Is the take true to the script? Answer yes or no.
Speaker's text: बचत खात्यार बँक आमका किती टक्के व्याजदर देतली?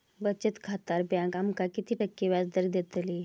yes